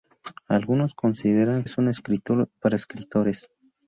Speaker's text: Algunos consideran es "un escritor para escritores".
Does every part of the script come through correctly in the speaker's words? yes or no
yes